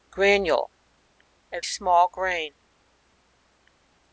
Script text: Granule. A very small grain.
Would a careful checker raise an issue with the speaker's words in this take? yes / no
yes